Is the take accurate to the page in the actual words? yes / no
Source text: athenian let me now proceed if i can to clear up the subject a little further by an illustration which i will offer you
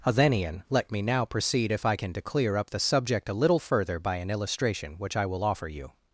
yes